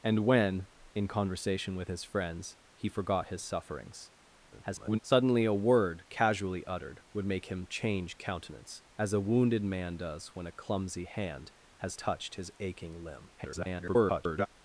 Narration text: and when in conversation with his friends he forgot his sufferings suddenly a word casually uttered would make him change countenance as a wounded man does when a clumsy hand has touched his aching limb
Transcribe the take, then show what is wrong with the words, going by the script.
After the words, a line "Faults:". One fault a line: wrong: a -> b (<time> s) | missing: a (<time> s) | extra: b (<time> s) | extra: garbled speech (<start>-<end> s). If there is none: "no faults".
and when in conversation with his friends he forgot his sufferings [garbled] suddenly a word casually uttered would make him change countenance as a wounded man does when a clumsy hand has touched his aching limb [garbled]
Faults:
extra: garbled speech (4.5-5.0 s)
extra: garbled speech (13.4-14.5 s)